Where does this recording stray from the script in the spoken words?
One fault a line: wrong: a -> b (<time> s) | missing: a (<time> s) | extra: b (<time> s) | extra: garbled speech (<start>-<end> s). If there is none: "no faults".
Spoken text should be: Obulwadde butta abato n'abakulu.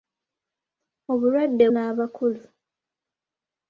missing: butta abato (1.6 s)